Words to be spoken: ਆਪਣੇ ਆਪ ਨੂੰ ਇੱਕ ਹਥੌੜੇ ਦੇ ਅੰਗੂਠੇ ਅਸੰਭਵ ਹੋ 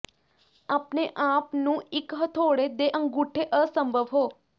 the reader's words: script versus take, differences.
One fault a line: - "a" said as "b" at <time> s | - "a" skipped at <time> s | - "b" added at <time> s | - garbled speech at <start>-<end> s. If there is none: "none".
none